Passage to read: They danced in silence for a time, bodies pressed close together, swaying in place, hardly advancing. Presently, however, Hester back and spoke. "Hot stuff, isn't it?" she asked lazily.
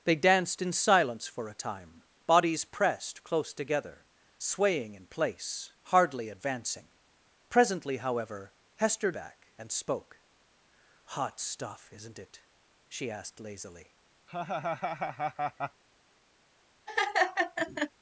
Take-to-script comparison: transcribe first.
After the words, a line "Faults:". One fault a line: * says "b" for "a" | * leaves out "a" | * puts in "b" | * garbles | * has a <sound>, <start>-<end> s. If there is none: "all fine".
They danced in silence for a time, bodies pressed close together, swaying in place, hardly advancing. Presently, however, Hester back and spoke. "Hot stuff, isn't it?" she asked lazily.
Faults:
* has a laugh, 14.3-15.8 s
* has a laugh, 16.9-17.9 s